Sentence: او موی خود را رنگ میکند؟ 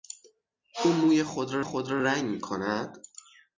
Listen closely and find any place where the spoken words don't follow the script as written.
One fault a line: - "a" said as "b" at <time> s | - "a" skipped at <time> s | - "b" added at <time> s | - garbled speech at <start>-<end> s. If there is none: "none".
- "خود را" added at 1.6 s